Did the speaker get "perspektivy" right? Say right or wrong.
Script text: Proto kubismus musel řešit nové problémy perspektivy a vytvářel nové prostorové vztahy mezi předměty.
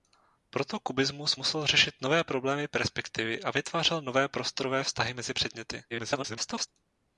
right